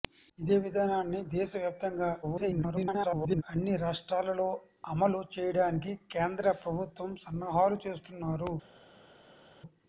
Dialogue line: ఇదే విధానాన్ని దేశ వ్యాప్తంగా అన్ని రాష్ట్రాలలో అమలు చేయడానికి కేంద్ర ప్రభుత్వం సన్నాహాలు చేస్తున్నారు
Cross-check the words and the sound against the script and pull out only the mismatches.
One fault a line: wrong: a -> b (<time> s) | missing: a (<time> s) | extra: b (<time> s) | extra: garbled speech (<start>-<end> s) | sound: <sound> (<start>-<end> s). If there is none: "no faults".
extra: garbled speech (2.2-3.4 s)